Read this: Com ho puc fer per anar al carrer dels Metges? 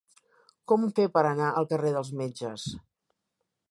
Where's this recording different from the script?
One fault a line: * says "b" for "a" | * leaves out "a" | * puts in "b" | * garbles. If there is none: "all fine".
* leaves out "puc"